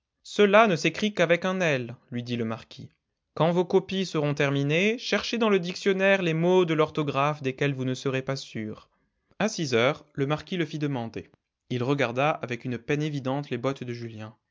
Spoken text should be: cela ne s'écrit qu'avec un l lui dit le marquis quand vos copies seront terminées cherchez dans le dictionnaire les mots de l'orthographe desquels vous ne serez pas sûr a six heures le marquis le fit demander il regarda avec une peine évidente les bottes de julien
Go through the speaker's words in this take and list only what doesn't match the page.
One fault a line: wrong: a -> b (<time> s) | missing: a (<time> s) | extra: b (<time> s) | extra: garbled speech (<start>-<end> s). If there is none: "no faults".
no faults